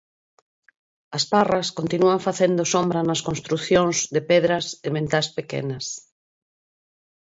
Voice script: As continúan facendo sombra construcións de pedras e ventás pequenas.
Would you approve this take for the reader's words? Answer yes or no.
no